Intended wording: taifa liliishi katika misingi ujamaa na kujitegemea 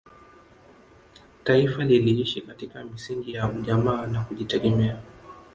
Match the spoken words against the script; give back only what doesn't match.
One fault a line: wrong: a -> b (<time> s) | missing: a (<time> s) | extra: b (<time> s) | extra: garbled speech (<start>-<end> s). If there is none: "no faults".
extra: ya (3.3 s)